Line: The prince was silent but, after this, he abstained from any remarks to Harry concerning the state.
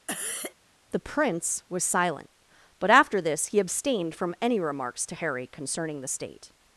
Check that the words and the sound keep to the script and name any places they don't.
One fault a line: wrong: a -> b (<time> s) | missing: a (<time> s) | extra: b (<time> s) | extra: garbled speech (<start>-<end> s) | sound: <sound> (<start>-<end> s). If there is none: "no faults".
sound: cough (0.1-0.5 s)